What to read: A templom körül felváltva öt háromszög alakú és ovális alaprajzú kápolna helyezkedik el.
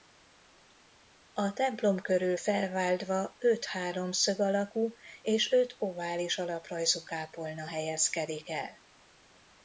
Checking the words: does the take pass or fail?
fail